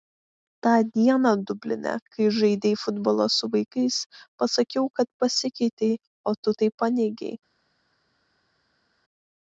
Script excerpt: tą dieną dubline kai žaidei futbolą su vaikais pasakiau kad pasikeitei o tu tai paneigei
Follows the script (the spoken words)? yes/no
yes